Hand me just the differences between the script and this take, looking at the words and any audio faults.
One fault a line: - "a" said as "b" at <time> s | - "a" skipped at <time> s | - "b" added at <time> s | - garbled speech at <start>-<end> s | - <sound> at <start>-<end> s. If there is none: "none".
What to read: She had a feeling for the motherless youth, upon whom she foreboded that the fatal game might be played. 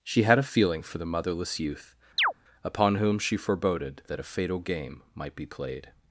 - chirp at 2.2-2.3 s
- "the" said as "a" at 4.2 s